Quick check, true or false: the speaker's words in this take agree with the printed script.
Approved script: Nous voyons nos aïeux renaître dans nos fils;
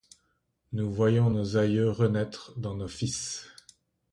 true